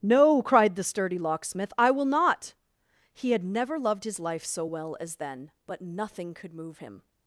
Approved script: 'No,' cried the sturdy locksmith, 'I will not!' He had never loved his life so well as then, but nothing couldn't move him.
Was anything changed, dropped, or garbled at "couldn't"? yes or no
yes